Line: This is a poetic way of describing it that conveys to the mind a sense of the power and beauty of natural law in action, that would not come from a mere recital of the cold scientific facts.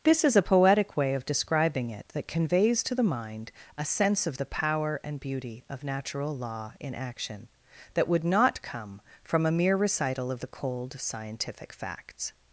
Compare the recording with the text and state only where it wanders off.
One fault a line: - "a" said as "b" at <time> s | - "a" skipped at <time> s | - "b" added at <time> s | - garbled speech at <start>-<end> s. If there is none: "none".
none